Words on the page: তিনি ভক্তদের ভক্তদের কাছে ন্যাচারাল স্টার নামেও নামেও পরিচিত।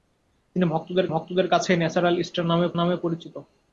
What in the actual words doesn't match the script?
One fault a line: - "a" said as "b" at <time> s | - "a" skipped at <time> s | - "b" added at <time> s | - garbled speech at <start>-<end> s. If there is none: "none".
none